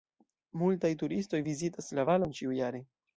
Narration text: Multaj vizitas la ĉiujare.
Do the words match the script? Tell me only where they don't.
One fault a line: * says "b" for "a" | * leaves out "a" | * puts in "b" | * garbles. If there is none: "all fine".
* puts in "turistoj"
* puts in "valon"